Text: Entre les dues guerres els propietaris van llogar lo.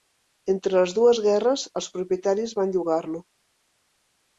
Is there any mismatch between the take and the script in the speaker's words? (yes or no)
no